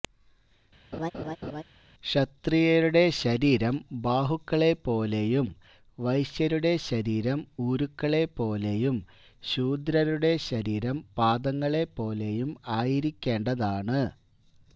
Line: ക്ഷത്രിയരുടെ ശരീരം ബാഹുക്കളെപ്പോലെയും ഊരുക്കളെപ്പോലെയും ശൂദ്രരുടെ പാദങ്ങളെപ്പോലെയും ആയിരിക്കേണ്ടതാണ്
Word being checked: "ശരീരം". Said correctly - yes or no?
yes